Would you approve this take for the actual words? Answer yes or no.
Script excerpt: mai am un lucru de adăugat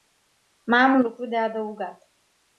yes